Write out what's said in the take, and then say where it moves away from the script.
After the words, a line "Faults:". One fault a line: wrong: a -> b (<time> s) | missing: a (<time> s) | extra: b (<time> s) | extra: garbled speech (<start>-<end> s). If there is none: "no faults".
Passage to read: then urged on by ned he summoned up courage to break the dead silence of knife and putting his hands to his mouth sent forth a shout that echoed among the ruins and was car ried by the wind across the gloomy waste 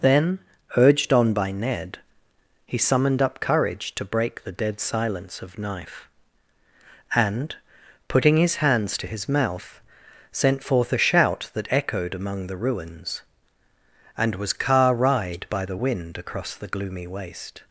then urged on by ned he summoned up courage to break the dead silence of knife and putting his hands to his mouth sent forth a shout that echoed among the ruins and was car ried by the wind across the gloomy waste
Faults:
no faults